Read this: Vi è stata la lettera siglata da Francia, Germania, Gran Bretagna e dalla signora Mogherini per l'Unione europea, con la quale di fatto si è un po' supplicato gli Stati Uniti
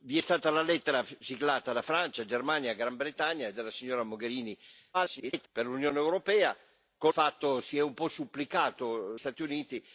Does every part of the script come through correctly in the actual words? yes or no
no